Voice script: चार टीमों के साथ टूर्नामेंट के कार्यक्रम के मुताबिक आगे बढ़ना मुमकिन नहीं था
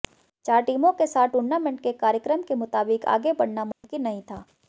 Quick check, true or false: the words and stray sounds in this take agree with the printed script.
false